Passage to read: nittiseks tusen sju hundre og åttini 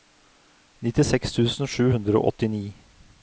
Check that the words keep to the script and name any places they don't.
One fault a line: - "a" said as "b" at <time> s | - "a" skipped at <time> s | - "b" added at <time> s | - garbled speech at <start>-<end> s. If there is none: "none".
none